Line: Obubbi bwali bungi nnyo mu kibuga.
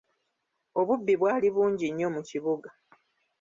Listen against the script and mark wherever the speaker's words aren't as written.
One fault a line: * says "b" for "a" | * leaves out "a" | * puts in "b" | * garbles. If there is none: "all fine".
all fine